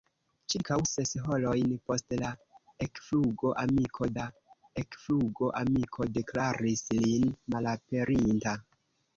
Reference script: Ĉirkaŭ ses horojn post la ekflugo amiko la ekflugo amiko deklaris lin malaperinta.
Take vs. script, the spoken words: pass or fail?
pass